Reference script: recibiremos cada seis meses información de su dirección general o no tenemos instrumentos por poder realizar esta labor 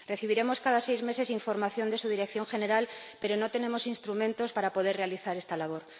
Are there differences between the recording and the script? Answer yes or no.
yes